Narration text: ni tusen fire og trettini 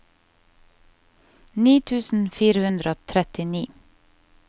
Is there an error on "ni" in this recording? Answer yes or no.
no